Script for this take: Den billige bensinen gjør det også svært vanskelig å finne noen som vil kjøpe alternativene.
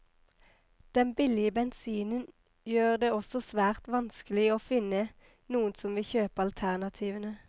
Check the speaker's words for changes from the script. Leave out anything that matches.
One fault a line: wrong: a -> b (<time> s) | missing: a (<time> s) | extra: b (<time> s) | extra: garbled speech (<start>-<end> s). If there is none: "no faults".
no faults